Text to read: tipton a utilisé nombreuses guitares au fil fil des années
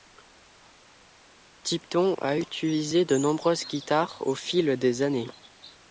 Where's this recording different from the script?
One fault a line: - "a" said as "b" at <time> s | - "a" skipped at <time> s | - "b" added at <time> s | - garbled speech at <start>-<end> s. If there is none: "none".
- "de" added at 3.0 s
- "fil" skipped at 4.8 s